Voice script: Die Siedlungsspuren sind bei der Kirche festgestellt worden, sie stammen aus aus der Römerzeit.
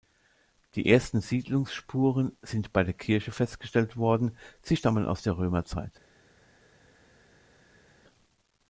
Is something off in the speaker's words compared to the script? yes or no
yes